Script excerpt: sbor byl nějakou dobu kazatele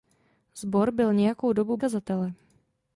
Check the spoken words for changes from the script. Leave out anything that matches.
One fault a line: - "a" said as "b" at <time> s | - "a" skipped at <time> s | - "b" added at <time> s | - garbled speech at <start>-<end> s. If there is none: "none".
none